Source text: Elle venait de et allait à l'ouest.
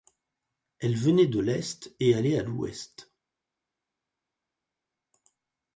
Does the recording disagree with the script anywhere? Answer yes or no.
yes